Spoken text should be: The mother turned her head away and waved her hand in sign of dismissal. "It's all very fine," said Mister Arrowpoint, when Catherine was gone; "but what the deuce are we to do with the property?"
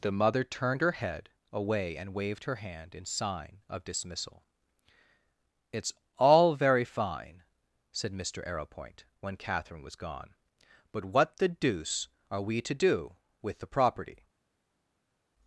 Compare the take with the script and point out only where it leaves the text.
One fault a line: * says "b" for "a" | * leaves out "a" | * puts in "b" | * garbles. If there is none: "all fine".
all fine